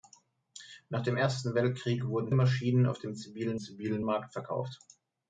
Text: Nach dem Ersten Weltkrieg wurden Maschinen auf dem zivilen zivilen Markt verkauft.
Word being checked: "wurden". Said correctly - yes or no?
yes